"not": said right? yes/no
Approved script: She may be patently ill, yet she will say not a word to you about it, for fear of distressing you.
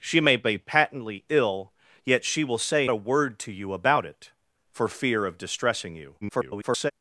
no